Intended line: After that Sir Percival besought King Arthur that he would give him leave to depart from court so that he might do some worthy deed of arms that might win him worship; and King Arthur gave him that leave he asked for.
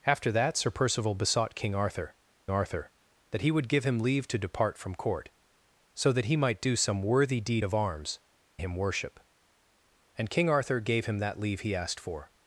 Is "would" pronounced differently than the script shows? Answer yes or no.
no